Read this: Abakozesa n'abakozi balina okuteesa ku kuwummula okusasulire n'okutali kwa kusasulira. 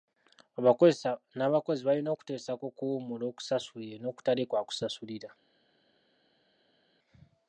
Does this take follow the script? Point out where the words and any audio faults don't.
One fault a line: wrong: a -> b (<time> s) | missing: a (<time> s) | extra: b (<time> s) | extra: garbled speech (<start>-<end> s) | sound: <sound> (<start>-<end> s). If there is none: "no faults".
no faults